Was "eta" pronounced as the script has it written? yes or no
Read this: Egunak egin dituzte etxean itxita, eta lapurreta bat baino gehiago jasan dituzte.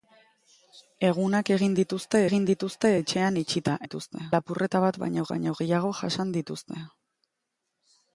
no